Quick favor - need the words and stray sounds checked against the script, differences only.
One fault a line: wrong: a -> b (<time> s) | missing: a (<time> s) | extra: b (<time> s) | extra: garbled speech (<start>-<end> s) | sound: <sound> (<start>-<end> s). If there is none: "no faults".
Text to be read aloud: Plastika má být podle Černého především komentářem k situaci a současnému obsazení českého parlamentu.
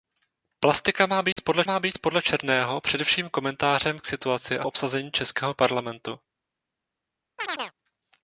sound: dropout (1.3-1.4 s)
extra: má být podle (1.6 s)
missing: současnému (4.7 s)
sound: chirp (7.4-7.7 s)